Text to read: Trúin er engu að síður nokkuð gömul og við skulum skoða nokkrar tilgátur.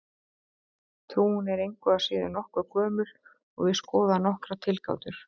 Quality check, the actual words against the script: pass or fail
fail